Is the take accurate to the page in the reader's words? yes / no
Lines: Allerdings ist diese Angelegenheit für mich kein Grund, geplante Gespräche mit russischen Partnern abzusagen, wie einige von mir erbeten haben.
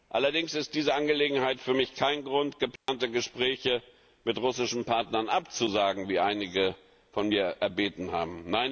yes